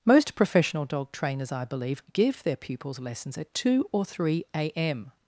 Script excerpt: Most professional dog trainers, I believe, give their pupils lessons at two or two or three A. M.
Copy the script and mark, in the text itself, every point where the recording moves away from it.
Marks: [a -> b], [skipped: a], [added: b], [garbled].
Most professional dog trainers, I believe, give their pupils lessons at two or [skipped: two or] three A. M.